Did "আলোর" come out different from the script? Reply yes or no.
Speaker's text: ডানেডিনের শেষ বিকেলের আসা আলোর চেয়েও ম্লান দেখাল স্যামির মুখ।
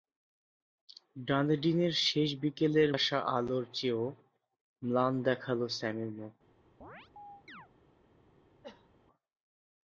no